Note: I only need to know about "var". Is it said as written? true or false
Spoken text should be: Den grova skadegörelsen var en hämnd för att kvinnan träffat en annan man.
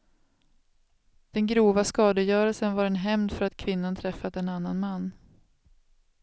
true